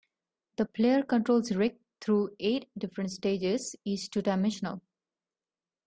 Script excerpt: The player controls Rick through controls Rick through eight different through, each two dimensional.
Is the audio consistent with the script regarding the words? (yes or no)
no